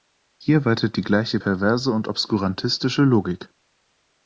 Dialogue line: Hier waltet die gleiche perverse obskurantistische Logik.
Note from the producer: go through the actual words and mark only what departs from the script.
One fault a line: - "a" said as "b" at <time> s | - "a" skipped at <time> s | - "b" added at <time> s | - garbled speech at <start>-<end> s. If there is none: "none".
- "und" added at 1.9 s